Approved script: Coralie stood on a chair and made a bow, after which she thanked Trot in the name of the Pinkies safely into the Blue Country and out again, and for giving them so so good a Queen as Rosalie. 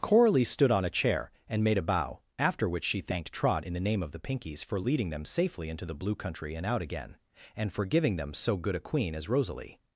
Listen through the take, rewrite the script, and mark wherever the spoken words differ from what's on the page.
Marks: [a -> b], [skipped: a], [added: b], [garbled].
Coralie stood on a chair and made a bow, after which she thanked Trot in the name of the Pinkies [added: for leading them] safely into the Blue Country and out again, and for giving them so [skipped: so] good a Queen as Rosalie.